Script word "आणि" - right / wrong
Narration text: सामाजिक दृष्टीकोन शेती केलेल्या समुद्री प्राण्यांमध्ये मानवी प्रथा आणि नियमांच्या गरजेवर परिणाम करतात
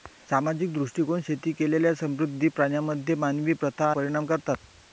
wrong